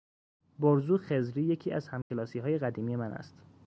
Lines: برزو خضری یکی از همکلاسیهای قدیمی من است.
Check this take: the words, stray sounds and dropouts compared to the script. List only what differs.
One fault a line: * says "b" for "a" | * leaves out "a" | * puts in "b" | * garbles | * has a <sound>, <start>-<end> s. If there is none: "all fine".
* has a dropout, 2.0-2.1 s